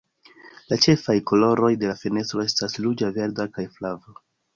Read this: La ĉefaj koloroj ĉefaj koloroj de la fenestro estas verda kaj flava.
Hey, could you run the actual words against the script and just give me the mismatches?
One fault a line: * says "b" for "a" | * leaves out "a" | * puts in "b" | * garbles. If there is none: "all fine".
* leaves out "ĉefaj koloroj"
* puts in "ruĝa"